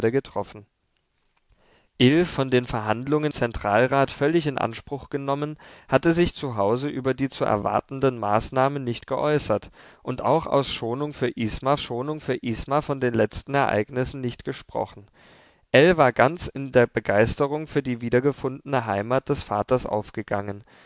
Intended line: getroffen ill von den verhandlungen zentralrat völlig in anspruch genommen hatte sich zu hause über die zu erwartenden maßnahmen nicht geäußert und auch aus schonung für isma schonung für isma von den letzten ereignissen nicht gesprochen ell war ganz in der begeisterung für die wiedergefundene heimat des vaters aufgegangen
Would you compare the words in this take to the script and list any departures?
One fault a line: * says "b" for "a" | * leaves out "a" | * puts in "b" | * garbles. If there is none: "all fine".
all fine